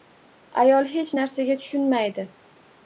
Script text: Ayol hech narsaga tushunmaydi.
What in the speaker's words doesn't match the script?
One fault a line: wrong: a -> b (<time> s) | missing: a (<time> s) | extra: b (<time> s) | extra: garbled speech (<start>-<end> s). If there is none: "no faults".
no faults